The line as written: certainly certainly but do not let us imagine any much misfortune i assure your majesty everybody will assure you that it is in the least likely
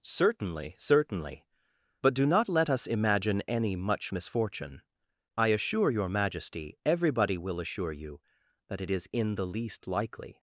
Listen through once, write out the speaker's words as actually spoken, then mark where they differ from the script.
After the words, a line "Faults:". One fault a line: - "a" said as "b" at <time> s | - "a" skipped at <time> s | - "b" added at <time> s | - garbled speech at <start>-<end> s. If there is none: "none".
certainly certainly but do not let us imagine any much misfortune i assure your majesty everybody will assure you that it is in the least likely
Faults:
none